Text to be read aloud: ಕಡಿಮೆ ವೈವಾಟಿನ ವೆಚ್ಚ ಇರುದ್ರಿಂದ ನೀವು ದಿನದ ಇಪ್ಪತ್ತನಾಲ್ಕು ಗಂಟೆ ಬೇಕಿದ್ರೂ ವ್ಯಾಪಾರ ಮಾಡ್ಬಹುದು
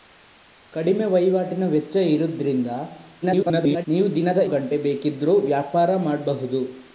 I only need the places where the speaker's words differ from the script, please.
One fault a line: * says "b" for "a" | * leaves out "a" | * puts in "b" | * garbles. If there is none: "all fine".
* garbles
* leaves out "ಇಪ್ಪತ್ತನಾಲ್ಕು"